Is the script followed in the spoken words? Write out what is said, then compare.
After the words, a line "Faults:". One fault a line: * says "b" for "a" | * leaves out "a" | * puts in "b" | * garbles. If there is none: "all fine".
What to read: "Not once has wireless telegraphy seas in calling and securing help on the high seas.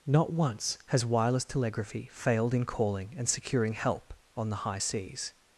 "Not once has wireless telegraphy failed in calling and securing help on the high seas.
Faults:
* says "failed" for "seas"